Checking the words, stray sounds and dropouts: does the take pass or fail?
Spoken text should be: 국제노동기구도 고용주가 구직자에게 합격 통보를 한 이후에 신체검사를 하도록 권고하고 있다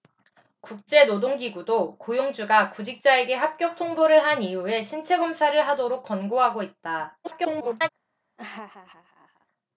fail